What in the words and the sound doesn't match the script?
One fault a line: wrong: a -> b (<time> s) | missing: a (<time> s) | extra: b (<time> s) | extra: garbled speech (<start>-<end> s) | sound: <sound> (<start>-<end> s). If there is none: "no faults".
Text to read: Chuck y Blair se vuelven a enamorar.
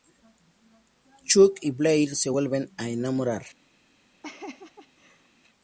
sound: laugh (4.2-5.3 s)